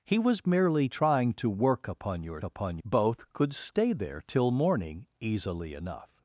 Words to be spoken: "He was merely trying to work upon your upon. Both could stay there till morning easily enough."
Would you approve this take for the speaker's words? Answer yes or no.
yes